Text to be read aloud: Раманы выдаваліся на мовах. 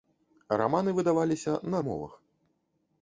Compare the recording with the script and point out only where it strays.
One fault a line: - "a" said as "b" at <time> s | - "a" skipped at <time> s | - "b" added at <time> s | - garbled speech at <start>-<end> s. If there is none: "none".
none